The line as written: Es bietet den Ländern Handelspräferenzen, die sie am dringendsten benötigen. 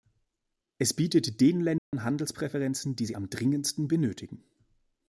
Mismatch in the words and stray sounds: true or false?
true